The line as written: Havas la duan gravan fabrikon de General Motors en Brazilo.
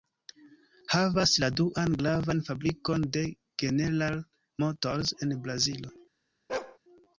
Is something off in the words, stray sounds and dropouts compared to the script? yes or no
yes